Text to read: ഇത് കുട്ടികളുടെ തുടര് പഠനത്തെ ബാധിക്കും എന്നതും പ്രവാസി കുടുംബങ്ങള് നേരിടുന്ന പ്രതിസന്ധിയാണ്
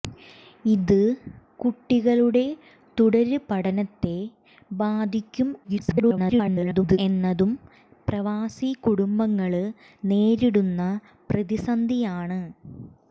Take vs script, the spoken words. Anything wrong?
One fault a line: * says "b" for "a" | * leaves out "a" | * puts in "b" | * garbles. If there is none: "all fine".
* garbles